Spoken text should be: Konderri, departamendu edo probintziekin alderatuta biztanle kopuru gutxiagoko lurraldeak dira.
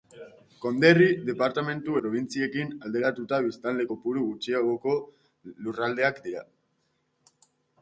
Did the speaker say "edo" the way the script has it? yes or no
no